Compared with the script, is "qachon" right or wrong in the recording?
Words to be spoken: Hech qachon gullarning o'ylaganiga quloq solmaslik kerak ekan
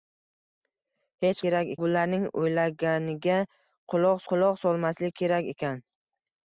wrong